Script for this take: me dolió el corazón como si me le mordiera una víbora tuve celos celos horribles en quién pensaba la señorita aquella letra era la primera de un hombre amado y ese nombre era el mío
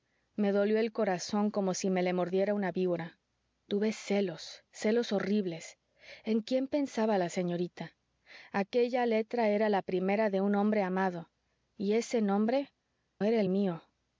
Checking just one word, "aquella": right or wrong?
right